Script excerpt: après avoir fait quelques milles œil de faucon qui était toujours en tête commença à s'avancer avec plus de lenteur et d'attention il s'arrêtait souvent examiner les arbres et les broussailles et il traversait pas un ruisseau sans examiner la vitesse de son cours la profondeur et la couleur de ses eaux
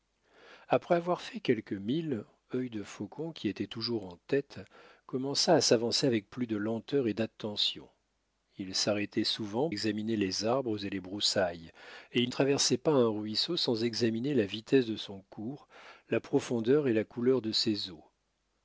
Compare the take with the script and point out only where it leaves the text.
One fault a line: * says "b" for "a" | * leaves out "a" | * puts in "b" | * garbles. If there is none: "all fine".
all fine